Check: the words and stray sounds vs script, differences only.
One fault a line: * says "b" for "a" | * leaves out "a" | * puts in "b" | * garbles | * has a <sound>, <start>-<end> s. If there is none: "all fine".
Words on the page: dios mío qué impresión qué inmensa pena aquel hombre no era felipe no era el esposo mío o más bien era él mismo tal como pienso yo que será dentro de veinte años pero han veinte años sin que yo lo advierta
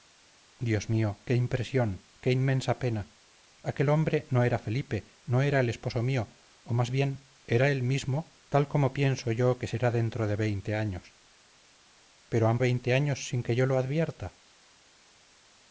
all fine